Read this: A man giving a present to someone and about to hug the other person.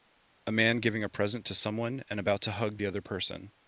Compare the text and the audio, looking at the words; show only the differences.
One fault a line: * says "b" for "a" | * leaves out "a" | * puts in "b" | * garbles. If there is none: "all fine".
all fine